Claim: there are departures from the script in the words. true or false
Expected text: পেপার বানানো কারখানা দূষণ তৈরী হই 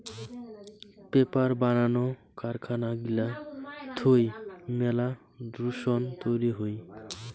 true